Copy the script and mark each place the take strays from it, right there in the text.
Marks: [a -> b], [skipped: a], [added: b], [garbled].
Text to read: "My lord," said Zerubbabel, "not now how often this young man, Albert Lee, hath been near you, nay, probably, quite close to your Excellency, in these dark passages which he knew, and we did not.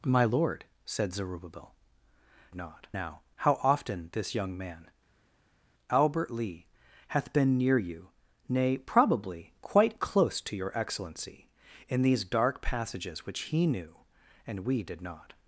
"My lord," said Zerubbabel, "not now how often this young man, Albert Lee, hath been near you, nay, probably, quite close to your Excellency, in these dark passages which he knew, and we did not.